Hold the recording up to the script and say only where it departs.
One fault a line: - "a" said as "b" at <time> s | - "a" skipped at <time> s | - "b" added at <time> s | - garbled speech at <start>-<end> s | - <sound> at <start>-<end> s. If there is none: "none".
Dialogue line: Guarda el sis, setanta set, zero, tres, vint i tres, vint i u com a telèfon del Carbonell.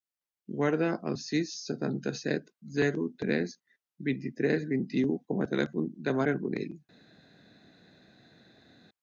none